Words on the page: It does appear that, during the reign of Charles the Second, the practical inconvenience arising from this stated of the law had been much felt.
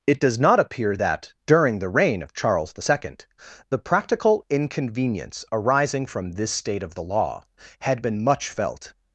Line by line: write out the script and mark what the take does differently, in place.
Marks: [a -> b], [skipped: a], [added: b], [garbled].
It does [added: not] appear that, during the reign of Charles the Second, the practical inconvenience arising from this [stated -> state] of the law had been much felt.